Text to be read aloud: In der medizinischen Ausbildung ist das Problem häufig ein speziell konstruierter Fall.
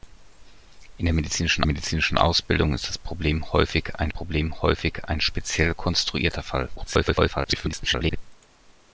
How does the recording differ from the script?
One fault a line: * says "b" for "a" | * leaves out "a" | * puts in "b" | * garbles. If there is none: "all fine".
* puts in "medizinischen"
* puts in "Problem häufig ein"
* garbles